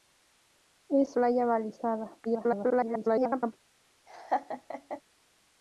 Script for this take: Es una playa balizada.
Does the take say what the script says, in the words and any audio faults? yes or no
no